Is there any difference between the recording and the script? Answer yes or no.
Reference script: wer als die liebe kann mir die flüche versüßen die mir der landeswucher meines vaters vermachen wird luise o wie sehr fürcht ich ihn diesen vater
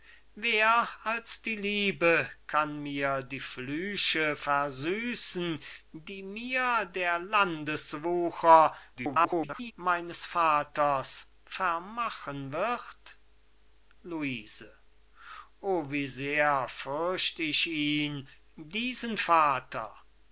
yes